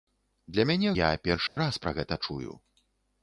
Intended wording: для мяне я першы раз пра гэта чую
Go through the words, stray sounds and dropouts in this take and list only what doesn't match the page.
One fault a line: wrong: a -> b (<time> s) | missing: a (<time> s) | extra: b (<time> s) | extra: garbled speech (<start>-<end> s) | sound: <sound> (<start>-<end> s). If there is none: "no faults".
sound: dropout (1.5-1.6 s)